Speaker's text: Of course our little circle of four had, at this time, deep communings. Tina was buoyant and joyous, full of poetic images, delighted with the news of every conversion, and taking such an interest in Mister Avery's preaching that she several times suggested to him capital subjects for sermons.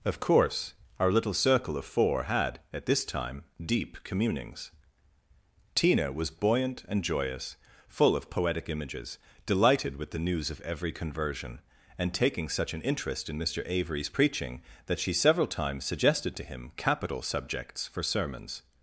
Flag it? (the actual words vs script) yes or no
no